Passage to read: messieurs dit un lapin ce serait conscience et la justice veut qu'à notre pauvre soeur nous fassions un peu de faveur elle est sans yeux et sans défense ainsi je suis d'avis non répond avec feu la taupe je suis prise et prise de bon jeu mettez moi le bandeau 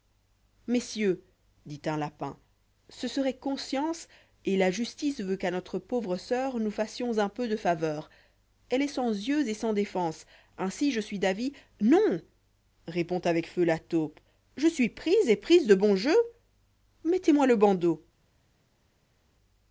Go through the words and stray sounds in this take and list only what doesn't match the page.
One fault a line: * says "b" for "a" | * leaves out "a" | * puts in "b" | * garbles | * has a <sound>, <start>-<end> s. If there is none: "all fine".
all fine